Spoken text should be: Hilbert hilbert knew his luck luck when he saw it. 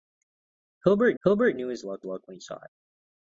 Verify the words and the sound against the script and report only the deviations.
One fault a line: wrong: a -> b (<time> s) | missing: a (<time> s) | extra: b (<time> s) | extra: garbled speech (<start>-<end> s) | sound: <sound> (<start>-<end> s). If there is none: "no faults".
no faults